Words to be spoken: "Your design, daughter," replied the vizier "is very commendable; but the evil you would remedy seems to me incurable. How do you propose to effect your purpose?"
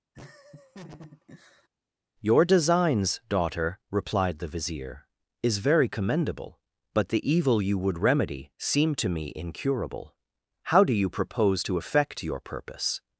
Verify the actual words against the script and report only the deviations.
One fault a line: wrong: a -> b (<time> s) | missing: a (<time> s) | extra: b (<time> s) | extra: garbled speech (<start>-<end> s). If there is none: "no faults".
wrong: design -> designs (2.4 s)
wrong: seems -> seem (8.6 s)